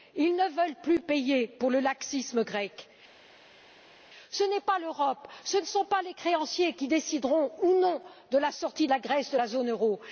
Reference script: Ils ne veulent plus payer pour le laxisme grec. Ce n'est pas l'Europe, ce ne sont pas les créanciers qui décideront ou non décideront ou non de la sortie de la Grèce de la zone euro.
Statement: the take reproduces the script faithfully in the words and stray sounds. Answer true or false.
false